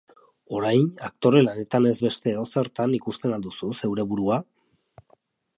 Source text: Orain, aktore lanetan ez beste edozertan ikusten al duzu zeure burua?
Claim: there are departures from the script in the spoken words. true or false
false